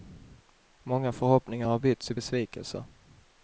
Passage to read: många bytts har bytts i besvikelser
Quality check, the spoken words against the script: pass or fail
fail